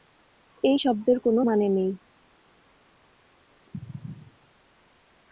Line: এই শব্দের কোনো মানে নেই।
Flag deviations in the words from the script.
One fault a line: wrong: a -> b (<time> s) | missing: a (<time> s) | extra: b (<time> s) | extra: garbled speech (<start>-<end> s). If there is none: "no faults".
no faults